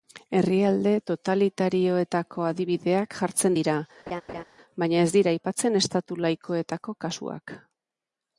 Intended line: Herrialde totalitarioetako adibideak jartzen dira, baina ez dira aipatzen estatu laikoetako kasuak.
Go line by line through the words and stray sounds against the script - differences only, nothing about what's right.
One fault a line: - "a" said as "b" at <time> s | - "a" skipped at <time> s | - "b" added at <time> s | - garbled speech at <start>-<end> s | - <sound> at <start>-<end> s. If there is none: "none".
- laugh at 4.1-4.4 s